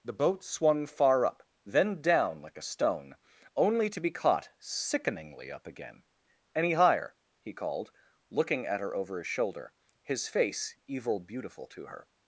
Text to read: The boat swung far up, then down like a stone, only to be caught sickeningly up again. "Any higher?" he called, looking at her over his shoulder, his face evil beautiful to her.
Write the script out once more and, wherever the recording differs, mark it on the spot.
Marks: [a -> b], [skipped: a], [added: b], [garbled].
The boat swung far up, then down like a stone, only to be caught sickeningly up again. "Any higher?" he called, looking at her over his shoulder, his face evil beautiful to her.